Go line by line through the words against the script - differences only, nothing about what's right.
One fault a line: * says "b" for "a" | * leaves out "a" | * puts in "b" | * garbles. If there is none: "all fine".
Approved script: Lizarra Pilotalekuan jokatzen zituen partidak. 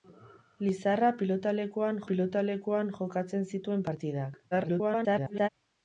* puts in "Pilotalekuan"
* garbles